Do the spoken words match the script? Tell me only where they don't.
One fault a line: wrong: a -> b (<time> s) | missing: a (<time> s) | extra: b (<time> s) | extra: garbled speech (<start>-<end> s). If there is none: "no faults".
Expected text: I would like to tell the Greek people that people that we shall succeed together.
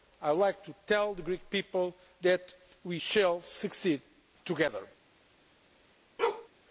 missing: people that (2.5 s)